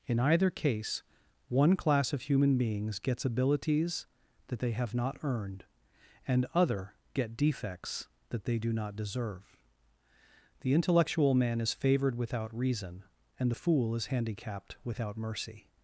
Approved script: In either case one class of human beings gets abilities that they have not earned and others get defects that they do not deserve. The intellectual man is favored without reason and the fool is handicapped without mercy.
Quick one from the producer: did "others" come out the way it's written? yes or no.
no